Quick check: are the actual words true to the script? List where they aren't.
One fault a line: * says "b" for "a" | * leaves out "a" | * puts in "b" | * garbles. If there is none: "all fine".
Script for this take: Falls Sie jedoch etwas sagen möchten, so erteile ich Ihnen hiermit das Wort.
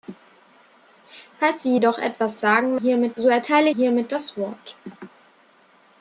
* says "hiermit" for "möchten"
* leaves out "ich Ihnen"